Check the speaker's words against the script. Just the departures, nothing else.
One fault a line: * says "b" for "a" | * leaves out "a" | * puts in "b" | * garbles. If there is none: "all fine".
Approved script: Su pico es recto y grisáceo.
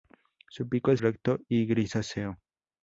all fine